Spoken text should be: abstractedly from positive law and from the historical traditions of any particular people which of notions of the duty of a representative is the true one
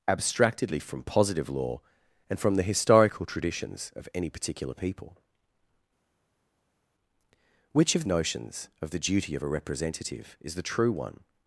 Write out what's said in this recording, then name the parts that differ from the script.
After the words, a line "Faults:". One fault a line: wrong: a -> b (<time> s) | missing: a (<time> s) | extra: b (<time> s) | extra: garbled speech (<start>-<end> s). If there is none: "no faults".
abstractedly from positive law and from the historical traditions of any particular people which of notions of the duty of a representative is the true one
Faults:
no faults